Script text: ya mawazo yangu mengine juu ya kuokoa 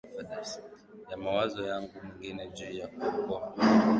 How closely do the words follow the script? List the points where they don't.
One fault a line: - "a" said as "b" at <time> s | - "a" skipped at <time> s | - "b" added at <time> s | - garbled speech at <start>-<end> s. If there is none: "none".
none